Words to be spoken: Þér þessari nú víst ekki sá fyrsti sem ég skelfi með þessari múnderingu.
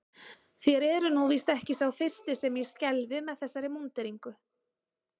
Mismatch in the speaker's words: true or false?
true